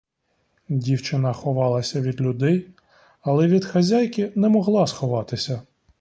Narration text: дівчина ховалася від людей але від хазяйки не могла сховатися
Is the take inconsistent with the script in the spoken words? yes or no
no